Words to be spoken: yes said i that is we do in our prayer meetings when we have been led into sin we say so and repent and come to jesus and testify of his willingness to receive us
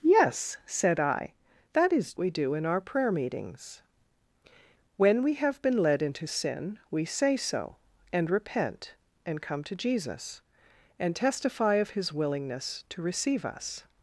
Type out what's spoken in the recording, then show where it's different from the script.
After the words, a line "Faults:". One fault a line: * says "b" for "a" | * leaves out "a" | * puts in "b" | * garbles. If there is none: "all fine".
yes said i that is we do in our prayer meetings when we have been led into sin we say so and repent and come to jesus and testify of his willingness to receive us
Faults:
all fine